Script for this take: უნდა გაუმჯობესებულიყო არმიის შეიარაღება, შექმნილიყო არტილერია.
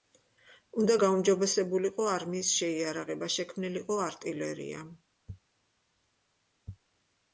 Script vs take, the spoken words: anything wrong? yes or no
no